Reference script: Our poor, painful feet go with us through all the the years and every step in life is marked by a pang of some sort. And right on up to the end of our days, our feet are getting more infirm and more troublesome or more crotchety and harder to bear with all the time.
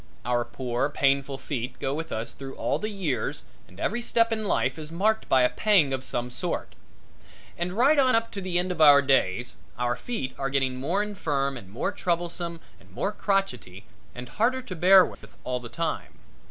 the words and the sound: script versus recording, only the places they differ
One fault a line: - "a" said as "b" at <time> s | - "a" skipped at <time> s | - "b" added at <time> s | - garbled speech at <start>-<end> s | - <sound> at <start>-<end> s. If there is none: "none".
- "the" skipped at 2.9 s
- "or" said as "and" at 12.8 s
- dropout at 15.1-15.2 s